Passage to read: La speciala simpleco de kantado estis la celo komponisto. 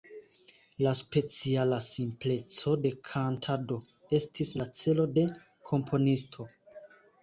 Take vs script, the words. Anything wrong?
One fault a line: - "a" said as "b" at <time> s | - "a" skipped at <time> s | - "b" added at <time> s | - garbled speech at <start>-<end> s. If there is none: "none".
- "de" added at 5.2 s